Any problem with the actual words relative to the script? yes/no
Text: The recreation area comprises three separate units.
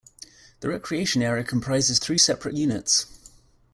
no